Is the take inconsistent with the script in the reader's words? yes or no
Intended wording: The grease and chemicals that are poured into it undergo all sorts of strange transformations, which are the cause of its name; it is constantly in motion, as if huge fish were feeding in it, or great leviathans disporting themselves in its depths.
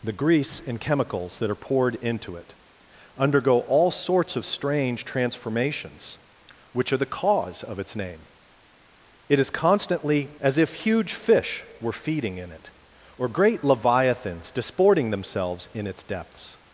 yes